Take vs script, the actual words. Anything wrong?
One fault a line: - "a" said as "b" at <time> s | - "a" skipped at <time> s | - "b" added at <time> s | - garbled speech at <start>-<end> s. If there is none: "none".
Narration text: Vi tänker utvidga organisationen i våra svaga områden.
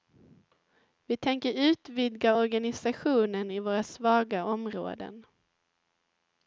none